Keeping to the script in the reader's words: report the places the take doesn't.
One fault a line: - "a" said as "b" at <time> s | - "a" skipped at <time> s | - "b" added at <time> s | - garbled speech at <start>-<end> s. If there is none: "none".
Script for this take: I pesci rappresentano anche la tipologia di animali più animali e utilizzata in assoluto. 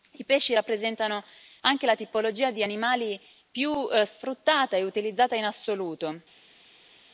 - "animali" said as "sfruttata" at 4.0 s